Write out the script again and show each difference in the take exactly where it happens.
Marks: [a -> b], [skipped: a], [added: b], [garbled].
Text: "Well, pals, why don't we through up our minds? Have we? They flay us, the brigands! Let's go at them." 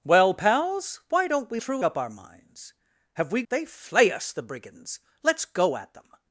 "Well, pals, why don't we through up our minds? Have we? They flay us, the brigands! Let's go at them."